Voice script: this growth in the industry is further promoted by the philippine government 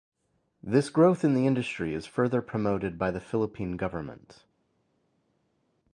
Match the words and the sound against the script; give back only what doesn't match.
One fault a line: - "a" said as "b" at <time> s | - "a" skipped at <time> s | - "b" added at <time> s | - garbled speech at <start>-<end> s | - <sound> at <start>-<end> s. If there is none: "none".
none